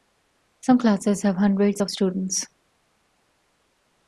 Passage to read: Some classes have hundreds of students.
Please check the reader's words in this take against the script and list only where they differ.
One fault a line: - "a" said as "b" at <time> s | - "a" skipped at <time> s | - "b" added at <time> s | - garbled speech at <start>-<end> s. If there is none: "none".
none